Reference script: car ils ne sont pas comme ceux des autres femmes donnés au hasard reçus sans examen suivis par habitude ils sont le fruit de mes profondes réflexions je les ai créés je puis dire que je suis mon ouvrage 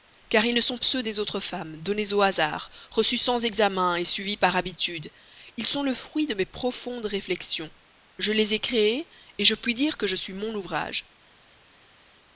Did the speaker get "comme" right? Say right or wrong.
wrong